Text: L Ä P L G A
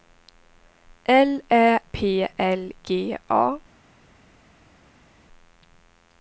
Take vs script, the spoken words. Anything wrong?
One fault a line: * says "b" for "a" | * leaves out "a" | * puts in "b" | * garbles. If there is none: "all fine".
all fine